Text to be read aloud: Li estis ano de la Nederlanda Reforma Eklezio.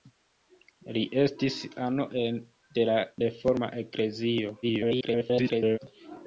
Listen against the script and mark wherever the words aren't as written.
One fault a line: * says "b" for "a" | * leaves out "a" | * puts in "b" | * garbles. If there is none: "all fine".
* leaves out "Nederlanda"
* garbles